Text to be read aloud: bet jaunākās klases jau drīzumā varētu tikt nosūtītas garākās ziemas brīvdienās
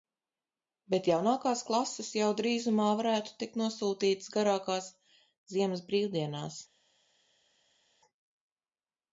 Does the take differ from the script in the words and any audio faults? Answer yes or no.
no